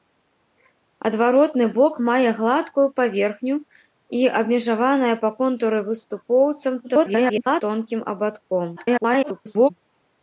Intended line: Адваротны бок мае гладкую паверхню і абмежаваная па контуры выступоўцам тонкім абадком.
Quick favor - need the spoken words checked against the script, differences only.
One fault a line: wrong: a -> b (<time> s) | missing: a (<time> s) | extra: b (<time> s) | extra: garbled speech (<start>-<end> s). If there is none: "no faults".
extra: garbled speech (6.8-7.6 s)
extra: garbled speech (8.8-9.7 s)